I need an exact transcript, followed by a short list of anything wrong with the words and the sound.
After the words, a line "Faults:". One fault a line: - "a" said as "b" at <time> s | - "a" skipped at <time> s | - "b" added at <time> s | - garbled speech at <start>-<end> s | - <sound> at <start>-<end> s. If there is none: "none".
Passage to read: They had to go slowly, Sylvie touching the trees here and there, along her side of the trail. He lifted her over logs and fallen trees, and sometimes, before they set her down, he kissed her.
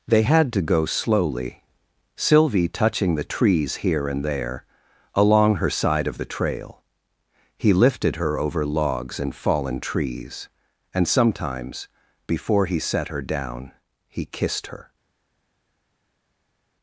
They had to go slowly, Sylvie touching the trees here and there, along her side of the trail. He lifted her over logs and fallen trees, and sometimes, before he set her down, he kissed her.
Faults:
- "they" said as "he" at 12.7 s